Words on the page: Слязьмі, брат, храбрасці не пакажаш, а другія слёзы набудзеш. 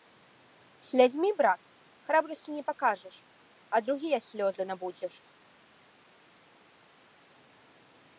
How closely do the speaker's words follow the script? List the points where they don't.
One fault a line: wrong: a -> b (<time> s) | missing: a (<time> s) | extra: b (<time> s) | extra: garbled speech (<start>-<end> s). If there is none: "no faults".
no faults